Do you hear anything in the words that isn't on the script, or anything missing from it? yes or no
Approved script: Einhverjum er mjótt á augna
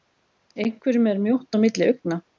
yes